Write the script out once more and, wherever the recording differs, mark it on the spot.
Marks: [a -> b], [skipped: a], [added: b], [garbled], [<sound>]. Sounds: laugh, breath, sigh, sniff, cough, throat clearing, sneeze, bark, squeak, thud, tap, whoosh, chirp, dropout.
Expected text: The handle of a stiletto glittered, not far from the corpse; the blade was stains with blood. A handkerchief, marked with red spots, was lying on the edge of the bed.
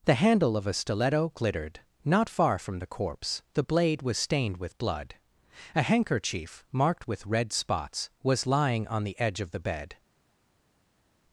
The handle of a stiletto glittered, not far from the corpse; the blade was [stains -> stained] with blood. A handkerchief, marked with red spots, was lying on the edge of the bed.